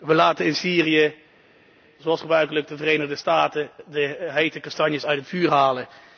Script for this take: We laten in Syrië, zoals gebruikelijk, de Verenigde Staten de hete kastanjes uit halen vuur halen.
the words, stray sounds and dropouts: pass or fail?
fail